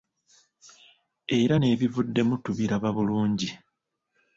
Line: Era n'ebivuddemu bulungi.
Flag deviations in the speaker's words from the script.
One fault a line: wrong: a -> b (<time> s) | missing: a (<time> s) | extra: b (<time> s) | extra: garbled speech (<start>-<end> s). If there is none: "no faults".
extra: tubiraba (2.4 s)